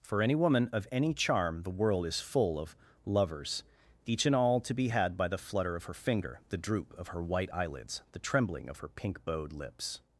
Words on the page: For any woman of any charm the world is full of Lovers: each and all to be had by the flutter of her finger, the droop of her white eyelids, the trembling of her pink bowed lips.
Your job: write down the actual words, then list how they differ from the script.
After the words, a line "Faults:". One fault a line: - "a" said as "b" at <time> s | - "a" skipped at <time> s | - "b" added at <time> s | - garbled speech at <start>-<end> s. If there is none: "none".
For any woman of any charm the world is full of Lovers: each and all to be had by the flutter of her finger, the droop of her white eyelids, the trembling of her pink bowed lips.
Faults:
none